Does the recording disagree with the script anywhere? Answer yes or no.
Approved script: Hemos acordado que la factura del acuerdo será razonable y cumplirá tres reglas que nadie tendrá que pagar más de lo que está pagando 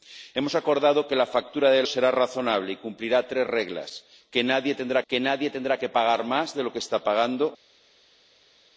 yes